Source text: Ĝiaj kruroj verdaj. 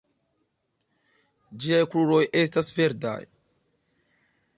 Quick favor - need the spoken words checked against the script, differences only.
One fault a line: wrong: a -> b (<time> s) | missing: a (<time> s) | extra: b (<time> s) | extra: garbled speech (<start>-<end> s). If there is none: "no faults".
extra: estas (2.4 s)